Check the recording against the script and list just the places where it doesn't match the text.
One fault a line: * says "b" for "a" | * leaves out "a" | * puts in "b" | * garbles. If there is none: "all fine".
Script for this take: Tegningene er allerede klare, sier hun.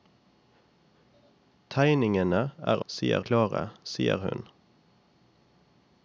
* says "sier" for "allerede"